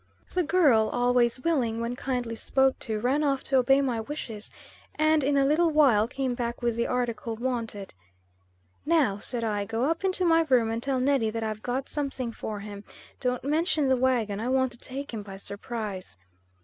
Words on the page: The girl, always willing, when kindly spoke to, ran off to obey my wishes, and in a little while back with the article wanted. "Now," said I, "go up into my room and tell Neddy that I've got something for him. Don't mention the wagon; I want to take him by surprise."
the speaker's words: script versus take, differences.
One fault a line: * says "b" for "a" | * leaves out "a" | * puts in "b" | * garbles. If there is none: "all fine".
* puts in "came"